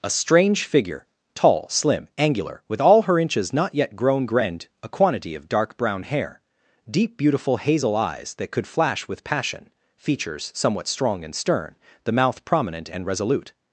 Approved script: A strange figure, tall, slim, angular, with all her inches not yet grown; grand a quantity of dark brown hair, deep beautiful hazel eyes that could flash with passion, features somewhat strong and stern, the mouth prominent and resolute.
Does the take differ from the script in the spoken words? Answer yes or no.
no